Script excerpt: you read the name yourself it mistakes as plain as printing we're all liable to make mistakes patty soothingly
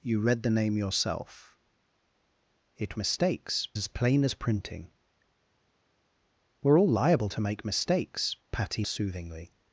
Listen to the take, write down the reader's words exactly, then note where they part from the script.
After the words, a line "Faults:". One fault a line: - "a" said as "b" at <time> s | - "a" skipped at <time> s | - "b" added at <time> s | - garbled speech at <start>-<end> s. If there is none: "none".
you read the name yourself it mistakes as plain as printing we're all liable to make mistakes patty soothingly
Faults:
none